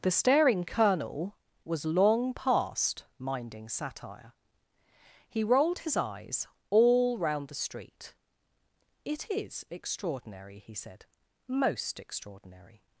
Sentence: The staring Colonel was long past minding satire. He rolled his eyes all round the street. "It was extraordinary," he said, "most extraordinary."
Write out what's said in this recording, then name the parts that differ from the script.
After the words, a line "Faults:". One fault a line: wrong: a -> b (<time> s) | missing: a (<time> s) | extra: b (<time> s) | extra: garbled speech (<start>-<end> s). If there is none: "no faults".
The staring Colonel was long past minding satire. He rolled his eyes all round the street. "It is extraordinary," he said, "most extraordinary."
Faults:
wrong: was -> is (9.3 s)